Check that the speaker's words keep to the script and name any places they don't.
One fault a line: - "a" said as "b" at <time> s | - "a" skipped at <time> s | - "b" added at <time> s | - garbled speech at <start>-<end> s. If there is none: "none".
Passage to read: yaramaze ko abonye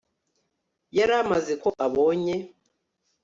none